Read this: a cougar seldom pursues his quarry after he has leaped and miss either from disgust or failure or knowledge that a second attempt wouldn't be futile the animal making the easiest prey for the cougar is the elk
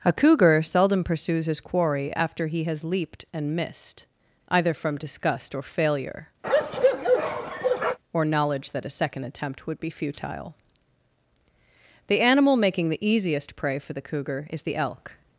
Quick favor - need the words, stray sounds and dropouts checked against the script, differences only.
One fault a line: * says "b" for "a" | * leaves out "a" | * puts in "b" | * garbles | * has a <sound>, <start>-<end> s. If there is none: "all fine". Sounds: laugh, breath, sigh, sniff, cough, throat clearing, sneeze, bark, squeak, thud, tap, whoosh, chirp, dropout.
* says "missed" for "miss"
* has a bark, 6.4-8.0 s
* says "would" for "wouldn't"